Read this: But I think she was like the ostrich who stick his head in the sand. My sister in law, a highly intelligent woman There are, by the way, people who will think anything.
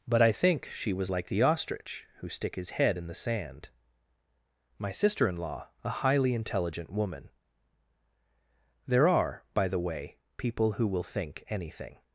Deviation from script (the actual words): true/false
false